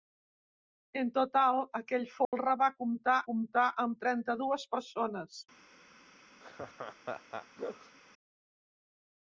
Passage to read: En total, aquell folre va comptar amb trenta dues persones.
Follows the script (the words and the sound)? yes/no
no